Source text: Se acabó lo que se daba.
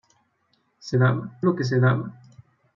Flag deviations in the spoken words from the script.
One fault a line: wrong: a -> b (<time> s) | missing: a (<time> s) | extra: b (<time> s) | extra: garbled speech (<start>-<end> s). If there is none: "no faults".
wrong: acabó -> daba (1.0 s)